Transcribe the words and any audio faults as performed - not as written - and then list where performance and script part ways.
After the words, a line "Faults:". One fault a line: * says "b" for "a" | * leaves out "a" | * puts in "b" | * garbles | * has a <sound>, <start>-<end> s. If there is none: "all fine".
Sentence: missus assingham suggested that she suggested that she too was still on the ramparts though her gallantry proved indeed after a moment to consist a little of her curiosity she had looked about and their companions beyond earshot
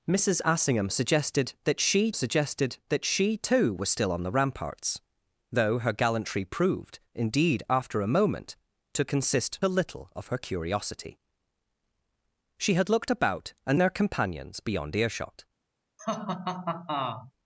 missus assingham suggested that she suggested that she too was still on the ramparts though her gallantry proved indeed after a moment to consist a little of her curiosity she had looked about and their companions beyond earshot
Faults:
* has a laugh, 16.0-17.3 s